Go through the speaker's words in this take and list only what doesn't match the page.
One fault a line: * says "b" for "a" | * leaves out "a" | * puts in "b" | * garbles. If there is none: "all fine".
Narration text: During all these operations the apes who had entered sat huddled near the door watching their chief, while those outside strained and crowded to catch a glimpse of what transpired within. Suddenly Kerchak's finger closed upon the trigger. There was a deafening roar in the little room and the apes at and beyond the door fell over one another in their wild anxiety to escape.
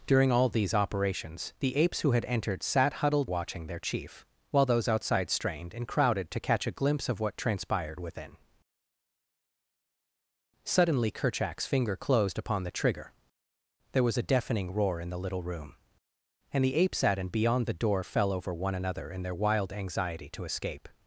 * leaves out "near the door"